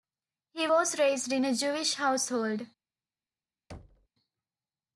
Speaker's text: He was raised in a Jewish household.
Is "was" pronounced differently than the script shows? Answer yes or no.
no